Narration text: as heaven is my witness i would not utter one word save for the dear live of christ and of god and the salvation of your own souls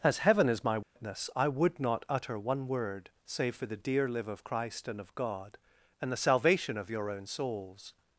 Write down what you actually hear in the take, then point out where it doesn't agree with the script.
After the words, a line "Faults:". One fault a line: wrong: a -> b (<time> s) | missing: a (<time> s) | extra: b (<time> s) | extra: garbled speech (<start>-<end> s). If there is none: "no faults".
as heaven is my witness i would not utter one word save for the dear live of christ and of god and the salvation of your own souls
Faults:
no faults